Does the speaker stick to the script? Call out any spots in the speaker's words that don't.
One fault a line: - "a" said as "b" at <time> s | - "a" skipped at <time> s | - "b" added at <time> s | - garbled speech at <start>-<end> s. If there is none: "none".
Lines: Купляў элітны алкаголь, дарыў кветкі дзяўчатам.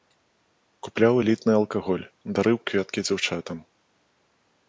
none